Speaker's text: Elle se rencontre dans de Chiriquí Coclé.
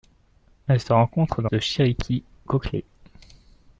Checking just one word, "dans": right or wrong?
right